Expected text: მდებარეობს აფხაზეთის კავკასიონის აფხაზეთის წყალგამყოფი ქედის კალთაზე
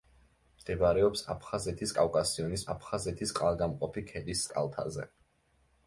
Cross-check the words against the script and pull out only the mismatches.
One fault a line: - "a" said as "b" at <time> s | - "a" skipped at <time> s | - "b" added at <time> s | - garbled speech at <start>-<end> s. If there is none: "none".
none